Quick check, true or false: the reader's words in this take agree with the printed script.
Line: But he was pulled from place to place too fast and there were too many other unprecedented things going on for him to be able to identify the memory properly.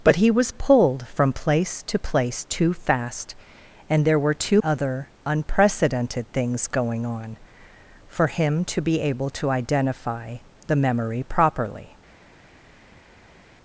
false